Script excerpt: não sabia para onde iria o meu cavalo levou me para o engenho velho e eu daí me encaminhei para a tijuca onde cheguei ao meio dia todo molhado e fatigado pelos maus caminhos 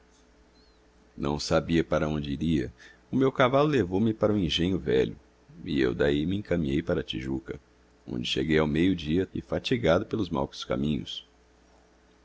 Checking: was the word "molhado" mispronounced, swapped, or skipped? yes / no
yes